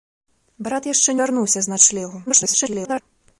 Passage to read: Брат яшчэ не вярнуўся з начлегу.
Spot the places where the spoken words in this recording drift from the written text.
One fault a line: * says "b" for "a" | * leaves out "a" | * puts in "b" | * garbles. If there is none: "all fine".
* leaves out "не"
* garbles